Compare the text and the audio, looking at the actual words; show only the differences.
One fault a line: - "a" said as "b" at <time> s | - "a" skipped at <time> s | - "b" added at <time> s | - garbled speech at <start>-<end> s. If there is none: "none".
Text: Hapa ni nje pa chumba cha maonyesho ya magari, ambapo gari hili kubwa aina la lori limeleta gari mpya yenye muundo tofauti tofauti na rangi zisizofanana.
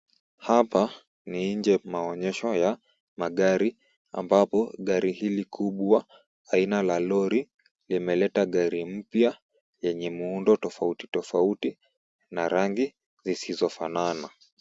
- "pa chumba cha" skipped at 1.8 s